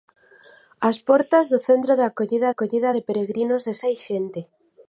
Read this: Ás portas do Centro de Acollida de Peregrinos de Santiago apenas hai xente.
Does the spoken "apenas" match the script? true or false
false